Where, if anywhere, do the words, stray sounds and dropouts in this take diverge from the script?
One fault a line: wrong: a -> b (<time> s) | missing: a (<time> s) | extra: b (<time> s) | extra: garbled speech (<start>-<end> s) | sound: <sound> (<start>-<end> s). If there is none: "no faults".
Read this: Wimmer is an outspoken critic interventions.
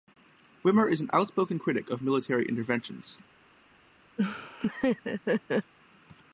extra: of military (1.9 s)
sound: laugh (4.2-5.7 s)